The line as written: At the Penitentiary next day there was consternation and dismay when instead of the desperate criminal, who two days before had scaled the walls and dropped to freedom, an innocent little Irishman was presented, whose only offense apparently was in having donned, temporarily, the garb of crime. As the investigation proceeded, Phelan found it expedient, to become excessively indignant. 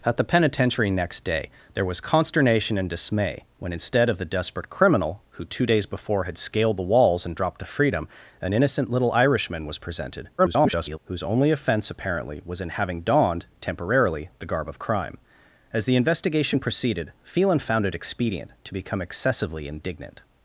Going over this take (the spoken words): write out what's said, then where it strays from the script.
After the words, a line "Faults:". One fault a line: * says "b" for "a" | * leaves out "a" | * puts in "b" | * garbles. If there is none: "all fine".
At the Penitentiary next day there was consternation and dismay when instead of the desperate criminal, who two days before had scaled the walls and dropped to freedom, an innocent little Irishman was presented, [garbled] whose only offense apparently was in having donned, temporarily, the garb of crime. As the investigation proceeded, Phelan found it expedient, to become excessively indignant.
Faults:
* garbles